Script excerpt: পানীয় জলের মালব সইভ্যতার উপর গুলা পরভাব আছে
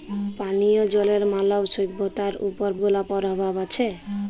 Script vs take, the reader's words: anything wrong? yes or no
no